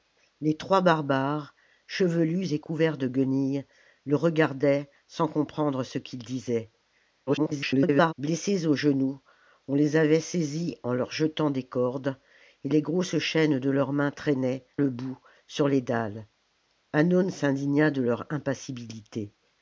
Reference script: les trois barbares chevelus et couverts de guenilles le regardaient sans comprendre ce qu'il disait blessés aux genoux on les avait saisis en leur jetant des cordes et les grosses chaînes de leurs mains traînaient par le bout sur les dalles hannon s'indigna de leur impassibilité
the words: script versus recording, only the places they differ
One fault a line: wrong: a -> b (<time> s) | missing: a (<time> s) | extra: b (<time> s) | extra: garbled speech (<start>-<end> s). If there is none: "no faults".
extra: garbled speech (7.3-8.1 s)
missing: par (14.7 s)